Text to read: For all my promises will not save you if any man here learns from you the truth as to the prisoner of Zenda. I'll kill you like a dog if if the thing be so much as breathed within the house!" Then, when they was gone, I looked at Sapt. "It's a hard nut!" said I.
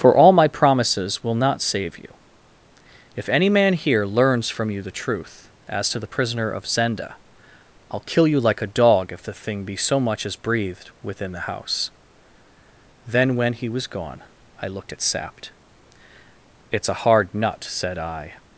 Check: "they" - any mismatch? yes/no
yes